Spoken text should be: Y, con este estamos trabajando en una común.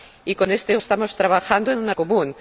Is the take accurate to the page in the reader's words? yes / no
yes